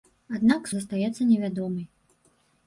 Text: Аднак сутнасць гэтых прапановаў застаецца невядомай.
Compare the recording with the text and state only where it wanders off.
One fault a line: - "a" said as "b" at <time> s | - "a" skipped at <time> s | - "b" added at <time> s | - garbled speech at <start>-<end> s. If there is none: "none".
- "сутнасць гэтых прапановаў" skipped at 0.7 s